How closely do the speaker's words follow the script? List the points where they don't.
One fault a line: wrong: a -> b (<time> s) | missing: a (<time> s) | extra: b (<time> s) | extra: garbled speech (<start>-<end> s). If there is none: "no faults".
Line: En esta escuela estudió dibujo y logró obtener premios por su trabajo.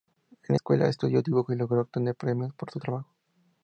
missing: esta (0.6 s)